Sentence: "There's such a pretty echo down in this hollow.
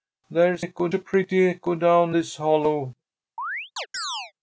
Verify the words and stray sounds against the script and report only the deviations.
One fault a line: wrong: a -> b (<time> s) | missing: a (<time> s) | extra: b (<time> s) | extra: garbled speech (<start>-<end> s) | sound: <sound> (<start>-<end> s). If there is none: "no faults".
wrong: such -> echo (0.6 s)
missing: in (2.2 s)
sound: chirp (3.4-4.3 s)